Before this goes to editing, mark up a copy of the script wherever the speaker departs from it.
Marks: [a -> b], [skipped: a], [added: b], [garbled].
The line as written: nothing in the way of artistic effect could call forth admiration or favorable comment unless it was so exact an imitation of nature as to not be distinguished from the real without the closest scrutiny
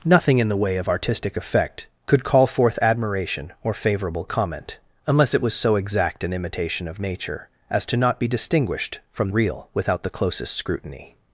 nothing in the way of artistic effect could call forth admiration or favorable comment unless it was so exact an imitation of nature as to not be distinguished from [skipped: the] real without the closest scrutiny